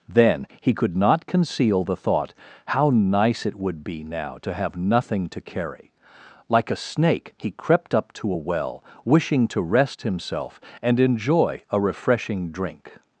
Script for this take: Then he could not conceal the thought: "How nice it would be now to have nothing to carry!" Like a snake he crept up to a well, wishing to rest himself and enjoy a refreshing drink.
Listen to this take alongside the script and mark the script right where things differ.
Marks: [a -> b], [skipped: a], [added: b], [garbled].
Then he could not conceal the thought: "How nice it would be now to have nothing to carry!" Like a snake he crept up to a well, wishing to rest himself and enjoy a refreshing drink.